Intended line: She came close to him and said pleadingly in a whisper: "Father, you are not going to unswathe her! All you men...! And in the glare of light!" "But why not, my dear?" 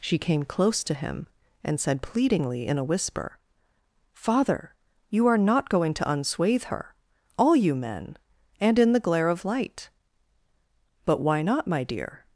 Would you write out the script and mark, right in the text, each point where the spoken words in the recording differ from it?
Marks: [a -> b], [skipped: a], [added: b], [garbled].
She came close to him and said pleadingly in a whisper: "Father, you are not going to unswathe her! All you men...! And in the glare of light!" "But why not, my dear?"